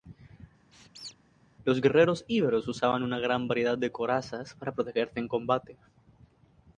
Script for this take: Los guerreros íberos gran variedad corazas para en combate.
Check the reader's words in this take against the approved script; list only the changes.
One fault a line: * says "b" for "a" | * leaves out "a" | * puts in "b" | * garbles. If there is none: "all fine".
* puts in "usaban una"
* puts in "de"
* puts in "protegerse"